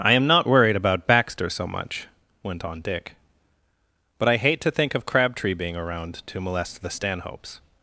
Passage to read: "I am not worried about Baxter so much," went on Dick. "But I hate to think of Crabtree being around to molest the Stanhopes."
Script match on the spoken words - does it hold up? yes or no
yes